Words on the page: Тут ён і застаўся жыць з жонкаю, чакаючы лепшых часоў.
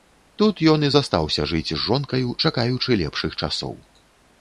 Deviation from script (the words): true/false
false